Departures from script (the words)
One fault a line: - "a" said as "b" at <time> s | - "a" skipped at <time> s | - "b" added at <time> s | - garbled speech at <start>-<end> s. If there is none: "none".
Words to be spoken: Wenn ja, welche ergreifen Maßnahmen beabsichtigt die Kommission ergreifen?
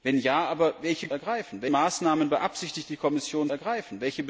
none